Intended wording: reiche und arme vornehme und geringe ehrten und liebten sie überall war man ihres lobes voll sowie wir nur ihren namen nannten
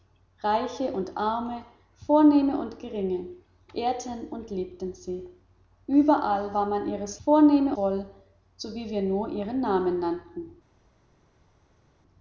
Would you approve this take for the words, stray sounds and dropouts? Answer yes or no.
no